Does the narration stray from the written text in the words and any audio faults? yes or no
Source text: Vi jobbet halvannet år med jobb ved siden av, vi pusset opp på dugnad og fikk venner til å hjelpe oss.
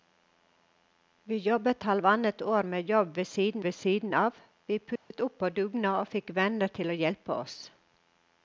yes